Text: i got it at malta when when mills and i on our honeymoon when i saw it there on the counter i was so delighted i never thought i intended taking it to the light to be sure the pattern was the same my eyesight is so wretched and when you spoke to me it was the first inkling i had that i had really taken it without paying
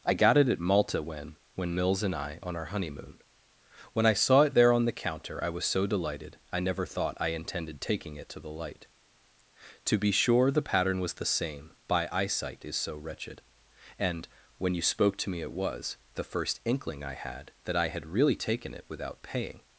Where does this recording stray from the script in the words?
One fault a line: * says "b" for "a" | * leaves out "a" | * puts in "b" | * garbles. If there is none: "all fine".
* says "by" for "my"